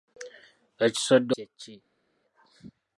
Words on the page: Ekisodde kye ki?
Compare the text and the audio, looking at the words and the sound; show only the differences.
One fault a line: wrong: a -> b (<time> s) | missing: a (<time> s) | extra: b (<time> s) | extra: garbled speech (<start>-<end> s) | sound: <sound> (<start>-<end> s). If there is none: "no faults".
no faults